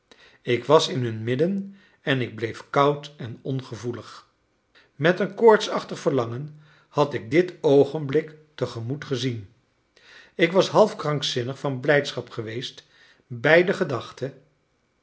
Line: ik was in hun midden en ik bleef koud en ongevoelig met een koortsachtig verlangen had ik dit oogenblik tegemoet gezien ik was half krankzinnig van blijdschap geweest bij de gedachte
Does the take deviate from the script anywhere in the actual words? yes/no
no